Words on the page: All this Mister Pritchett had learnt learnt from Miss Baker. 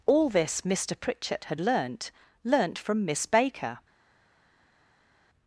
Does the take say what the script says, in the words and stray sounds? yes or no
yes